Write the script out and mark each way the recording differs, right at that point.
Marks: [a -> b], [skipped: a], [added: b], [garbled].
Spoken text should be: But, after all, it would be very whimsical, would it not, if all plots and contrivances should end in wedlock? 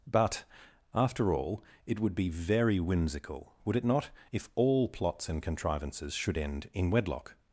But, after all, it would be very whimsical, would it not, if all plots and contrivances should end in wedlock?